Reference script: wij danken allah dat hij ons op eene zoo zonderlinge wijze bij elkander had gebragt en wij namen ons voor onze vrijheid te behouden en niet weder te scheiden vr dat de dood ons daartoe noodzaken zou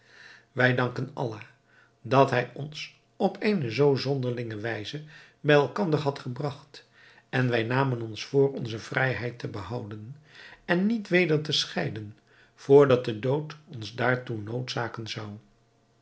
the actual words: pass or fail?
pass